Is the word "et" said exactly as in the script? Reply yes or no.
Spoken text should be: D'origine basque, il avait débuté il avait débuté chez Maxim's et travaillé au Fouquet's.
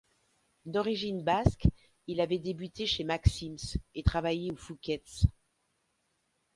yes